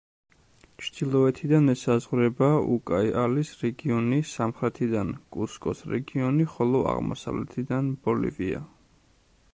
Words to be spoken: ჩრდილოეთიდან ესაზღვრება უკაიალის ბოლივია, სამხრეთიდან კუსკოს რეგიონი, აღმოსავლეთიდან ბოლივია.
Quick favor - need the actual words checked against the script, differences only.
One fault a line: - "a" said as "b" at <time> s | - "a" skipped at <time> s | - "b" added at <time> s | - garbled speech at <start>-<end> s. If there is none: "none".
- "ბოლივია" said as "რეგიონი" at 3.6 s
- "ხოლო" added at 6.6 s